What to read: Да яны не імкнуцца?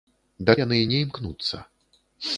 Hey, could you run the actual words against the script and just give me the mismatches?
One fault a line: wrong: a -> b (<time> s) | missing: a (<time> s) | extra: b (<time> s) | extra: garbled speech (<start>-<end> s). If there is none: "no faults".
no faults